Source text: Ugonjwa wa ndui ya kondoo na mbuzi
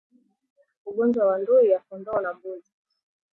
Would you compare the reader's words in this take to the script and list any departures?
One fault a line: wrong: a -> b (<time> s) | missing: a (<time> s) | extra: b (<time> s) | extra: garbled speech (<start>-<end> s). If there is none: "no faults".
no faults